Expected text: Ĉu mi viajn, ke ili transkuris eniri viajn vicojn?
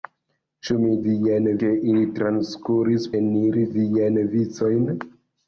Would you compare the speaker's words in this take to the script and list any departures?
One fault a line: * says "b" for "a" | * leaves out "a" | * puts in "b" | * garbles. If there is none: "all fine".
all fine